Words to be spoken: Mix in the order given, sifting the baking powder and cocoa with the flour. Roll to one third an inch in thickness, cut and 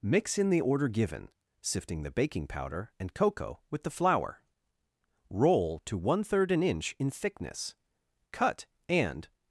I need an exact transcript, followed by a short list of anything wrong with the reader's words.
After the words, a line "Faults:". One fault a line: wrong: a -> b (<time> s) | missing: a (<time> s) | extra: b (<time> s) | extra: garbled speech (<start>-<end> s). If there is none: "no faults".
Mix in the order given, sifting the baking powder and cocoa with the flour. Roll to one third an inch in thickness, cut and
Faults:
no faults